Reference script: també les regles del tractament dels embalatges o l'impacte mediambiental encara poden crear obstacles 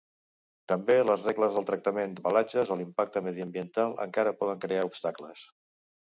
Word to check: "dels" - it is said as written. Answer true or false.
false